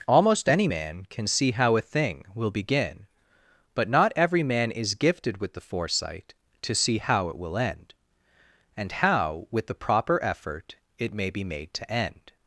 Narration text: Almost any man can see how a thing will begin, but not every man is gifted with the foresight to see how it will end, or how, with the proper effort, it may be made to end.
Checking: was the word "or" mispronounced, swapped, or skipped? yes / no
yes